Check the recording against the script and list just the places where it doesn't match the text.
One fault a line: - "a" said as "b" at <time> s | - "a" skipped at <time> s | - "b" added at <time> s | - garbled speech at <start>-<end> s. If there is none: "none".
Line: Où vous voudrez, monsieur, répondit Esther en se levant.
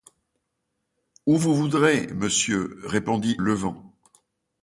- "Esther en se" skipped at 3.4 s